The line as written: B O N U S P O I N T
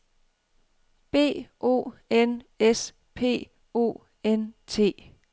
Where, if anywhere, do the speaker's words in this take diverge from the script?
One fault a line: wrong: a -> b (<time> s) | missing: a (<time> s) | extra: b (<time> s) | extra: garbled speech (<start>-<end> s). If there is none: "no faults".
missing: U (2.4 s)
missing: I (4.0 s)